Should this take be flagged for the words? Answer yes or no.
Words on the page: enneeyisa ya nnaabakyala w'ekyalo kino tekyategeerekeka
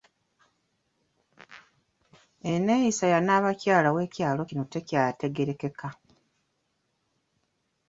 no